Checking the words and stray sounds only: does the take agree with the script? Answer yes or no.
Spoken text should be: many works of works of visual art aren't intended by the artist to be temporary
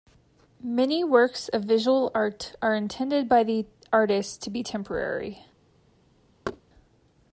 no